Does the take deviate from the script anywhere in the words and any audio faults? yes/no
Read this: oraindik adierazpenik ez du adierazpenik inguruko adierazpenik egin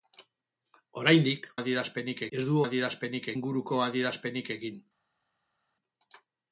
no